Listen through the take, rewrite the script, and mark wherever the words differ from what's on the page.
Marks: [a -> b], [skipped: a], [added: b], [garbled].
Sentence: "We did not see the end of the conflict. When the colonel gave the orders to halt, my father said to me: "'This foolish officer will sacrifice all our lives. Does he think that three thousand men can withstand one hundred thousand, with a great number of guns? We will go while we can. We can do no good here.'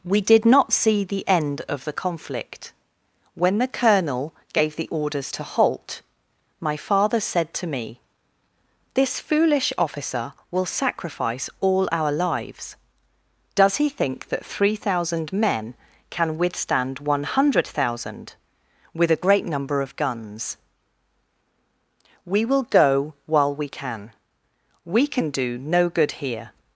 "We did not see the end of the conflict. When the colonel gave the orders to halt, my father said to me: "'This foolish officer will sacrifice all our lives. Does he think that three thousand men can withstand one hundred thousand, with a great number of guns? We will go while we can. We can do no good here.'